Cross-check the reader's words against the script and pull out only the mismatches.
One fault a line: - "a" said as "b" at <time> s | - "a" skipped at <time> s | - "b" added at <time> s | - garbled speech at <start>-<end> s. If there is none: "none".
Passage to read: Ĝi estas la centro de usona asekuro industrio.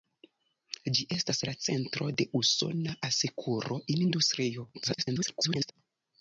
- garbled speech at 4.7-5.7 s